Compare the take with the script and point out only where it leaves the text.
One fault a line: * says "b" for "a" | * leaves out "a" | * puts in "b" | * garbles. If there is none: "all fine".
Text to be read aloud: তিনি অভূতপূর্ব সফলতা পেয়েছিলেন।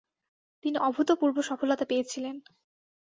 all fine